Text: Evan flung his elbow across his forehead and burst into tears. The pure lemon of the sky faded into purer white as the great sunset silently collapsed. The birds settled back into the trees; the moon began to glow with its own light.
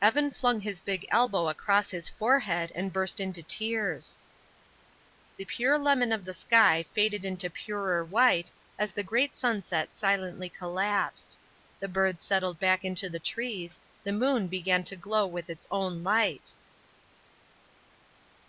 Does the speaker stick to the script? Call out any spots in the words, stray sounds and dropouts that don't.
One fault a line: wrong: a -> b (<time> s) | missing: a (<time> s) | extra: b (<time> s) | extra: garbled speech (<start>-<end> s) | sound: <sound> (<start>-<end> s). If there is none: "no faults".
extra: big (0.8 s)